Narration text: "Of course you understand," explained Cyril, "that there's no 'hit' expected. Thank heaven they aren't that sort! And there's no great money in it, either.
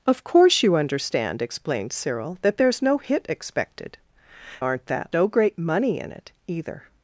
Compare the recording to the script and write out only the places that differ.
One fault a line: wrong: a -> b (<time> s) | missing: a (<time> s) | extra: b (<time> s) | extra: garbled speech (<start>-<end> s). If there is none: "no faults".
missing: Thank heaven they (4.0 s)
missing: sort And there's (5.1 s)